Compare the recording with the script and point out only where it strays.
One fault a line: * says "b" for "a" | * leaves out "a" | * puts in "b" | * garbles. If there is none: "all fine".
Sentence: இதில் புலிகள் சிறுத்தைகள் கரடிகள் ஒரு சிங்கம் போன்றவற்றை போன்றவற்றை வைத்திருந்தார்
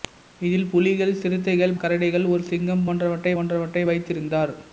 all fine